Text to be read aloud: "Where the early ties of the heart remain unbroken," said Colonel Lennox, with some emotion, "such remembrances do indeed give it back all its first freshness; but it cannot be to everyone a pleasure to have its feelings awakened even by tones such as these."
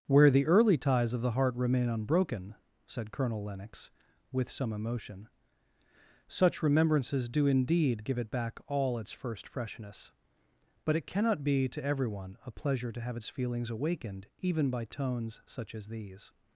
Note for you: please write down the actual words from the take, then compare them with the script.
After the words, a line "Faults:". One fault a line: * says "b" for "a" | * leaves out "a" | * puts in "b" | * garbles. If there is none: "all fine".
"Where the early ties of the heart remain unbroken," said Colonel Lennox, with some emotion, "such remembrances do indeed give it back all its first freshness; but it cannot be to everyone a pleasure to have its feelings awakened even by tones such as these."
Faults:
all fine